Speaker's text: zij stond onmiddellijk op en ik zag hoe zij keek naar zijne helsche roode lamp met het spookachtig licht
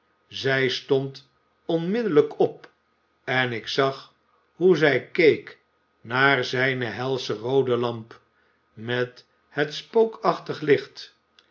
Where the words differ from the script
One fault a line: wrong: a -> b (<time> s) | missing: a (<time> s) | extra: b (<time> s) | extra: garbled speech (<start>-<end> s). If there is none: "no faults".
no faults